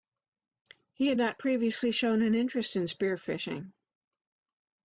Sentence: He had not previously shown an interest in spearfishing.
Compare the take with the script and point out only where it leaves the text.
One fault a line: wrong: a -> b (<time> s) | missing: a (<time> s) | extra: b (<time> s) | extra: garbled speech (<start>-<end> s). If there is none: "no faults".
no faults